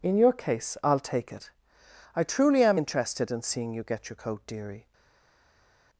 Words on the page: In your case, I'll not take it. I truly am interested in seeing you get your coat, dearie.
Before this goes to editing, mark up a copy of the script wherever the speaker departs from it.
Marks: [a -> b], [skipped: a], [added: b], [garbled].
In your case, I'll [skipped: not] take it. I truly am interested in seeing you get your coat, dearie.